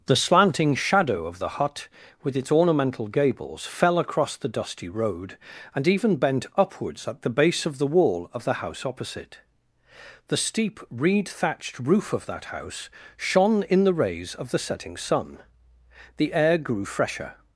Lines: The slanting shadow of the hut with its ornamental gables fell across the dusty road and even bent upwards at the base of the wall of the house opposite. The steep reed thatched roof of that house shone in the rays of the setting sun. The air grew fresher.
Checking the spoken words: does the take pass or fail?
pass